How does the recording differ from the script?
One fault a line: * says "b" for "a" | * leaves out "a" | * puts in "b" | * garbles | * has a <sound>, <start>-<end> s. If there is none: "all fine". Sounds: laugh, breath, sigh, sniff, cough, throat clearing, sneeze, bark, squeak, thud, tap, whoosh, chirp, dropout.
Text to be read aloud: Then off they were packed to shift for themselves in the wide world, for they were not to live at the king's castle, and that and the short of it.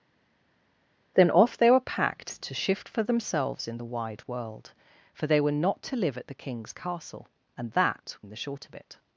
all fine